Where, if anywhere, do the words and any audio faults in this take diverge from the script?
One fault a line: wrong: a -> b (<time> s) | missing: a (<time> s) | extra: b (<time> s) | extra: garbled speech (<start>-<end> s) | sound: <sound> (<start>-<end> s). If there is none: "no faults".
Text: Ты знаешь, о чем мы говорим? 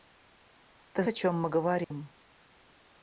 missing: знаешь (1.0 s)
sound: dropout (1.8-1.9 s)